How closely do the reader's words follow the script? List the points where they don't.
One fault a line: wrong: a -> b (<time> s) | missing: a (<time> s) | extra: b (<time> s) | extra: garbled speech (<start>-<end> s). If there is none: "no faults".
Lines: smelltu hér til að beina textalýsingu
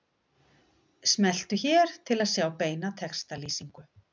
extra: sjá (2.4 s)